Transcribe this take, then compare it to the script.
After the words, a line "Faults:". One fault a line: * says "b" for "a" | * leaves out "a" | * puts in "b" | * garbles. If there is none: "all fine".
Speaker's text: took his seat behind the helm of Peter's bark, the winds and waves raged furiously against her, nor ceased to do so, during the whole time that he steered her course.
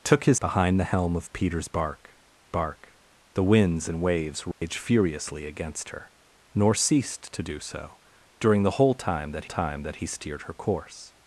took his behind the helm of Peter's bark bark, the winds and waves raged furiously against her, nor ceased to do so, during the whole time that time that he steered her course.
Faults:
* leaves out "seat"
* puts in "bark"
* puts in "time that"